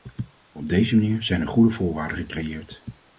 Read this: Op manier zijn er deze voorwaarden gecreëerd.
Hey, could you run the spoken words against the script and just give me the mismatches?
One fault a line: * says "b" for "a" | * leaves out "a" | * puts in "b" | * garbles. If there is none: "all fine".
* puts in "deze"
* says "goede" for "deze"